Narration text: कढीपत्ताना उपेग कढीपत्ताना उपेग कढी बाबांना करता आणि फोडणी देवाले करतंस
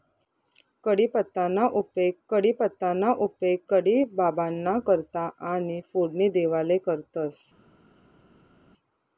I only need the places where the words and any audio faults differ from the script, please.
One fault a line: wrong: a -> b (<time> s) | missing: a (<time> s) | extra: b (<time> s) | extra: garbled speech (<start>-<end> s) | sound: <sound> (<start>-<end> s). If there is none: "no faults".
no faults